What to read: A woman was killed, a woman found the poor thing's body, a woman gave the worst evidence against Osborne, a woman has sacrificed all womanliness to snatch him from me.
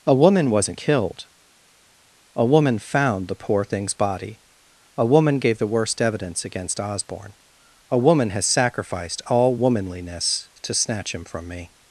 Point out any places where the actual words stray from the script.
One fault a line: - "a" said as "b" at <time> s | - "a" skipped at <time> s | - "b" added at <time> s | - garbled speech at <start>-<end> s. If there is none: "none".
- "was" said as "wasn't" at 0.5 s